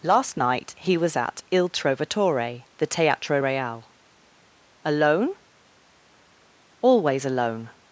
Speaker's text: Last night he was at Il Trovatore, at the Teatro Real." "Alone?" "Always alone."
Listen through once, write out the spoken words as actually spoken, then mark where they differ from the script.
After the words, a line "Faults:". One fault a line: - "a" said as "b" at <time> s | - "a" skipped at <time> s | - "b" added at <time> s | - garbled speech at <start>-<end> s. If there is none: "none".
Last night he was at Il Trovatore, the Teatro Real." "Alone?" "Always alone."
Faults:
- "at" skipped at 2.6 s